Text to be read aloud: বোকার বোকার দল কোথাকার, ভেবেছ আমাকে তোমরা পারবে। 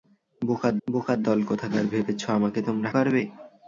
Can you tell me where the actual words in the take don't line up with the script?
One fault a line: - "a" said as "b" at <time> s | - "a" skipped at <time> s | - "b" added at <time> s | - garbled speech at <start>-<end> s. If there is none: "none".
none